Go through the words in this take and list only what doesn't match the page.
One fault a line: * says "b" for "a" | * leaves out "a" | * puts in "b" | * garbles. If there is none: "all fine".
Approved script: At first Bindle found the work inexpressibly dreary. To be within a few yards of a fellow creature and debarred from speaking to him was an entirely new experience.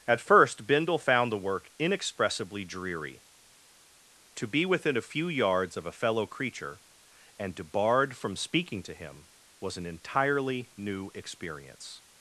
all fine